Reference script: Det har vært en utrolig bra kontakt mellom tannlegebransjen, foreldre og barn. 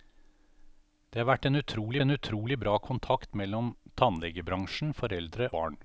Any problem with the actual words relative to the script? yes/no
yes